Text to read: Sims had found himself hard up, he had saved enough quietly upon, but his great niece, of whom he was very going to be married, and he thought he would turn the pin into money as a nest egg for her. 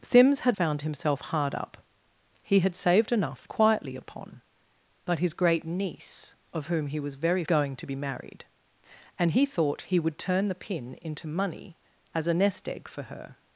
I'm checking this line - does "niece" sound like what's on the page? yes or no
yes